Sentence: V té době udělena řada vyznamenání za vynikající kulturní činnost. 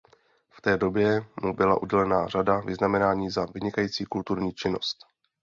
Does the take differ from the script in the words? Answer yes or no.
yes